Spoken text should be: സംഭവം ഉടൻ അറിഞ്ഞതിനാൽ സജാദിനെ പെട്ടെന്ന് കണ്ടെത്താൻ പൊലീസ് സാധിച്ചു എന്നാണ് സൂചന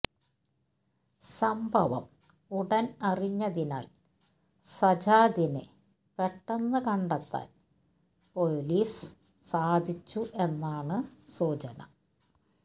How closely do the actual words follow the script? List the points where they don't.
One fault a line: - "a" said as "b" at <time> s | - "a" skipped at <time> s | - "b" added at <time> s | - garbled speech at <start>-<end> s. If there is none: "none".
none